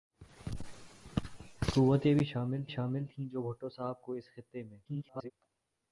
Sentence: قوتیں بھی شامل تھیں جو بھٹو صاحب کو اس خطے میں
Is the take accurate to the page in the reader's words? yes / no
no